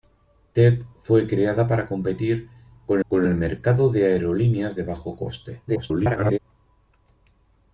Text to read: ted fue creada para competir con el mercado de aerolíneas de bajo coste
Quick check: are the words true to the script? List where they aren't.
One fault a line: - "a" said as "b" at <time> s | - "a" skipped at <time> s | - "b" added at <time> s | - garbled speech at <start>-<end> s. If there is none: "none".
- "con" added at 3.1 s
- garbled speech at 5.7-6.4 s